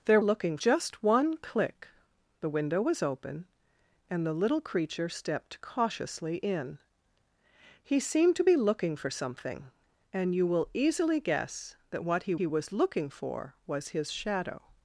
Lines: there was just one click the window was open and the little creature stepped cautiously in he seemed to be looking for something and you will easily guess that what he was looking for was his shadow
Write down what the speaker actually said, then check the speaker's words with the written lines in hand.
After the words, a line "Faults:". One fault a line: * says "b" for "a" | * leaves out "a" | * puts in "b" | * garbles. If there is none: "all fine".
there looking just one click the window was open and the little creature stepped cautiously in he seemed to be looking for something and you will easily guess that what he he was looking for was his shadow
Faults:
* says "looking" for "was"
* puts in "he"